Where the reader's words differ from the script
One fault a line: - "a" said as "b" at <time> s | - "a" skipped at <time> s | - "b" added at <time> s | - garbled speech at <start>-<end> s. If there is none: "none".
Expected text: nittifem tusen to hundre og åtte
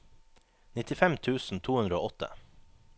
none